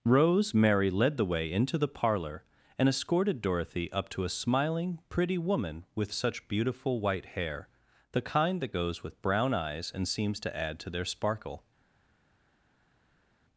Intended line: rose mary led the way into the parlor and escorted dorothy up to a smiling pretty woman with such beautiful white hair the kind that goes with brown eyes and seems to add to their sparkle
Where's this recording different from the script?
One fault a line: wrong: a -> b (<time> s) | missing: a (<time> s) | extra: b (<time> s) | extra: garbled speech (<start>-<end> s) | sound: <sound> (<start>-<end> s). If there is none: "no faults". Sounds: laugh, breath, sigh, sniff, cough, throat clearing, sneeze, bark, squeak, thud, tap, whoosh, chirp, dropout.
no faults